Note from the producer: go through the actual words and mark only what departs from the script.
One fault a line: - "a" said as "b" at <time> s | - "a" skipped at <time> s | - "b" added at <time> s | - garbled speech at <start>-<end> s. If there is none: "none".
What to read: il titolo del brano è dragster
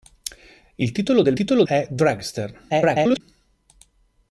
- "brano" said as "titolo" at 1.3 s
- garbled speech at 2.7-3.2 s